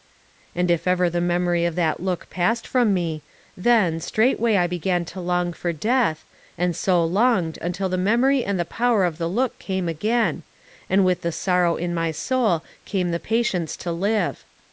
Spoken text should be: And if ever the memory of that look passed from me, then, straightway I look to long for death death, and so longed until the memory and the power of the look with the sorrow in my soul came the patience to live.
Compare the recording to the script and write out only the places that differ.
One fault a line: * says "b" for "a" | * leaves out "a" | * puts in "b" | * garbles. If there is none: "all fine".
* says "began" for "look"
* leaves out "death"
* puts in "came again and"